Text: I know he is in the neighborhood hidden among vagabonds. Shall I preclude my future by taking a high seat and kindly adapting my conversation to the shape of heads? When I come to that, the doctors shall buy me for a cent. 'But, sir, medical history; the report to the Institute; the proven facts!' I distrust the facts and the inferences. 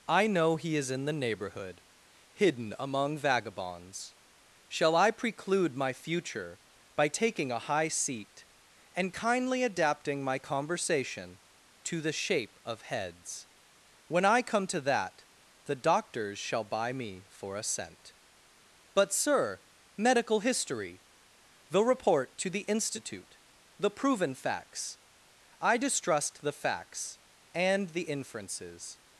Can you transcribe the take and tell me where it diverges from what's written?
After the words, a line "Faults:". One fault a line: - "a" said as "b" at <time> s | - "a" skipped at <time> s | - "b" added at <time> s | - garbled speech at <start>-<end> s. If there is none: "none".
I know he is in the neighborhood hidden among vagabonds. Shall I preclude my future by taking a high seat and kindly adapting my conversation to the shape of heads? When I come to that, the doctors shall buy me for a cent. 'But, sir, medical history; the report to the Institute; the proven facts!' I distrust the facts and the inferences.
Faults:
none